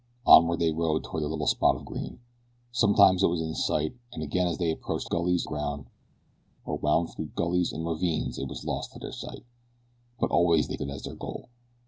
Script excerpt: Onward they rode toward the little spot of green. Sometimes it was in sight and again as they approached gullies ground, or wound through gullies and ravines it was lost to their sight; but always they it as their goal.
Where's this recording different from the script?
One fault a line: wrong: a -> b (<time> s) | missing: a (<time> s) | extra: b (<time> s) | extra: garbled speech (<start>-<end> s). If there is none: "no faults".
no faults